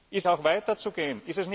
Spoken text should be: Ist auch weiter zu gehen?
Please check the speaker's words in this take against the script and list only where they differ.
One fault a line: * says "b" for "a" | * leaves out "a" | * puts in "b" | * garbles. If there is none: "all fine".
all fine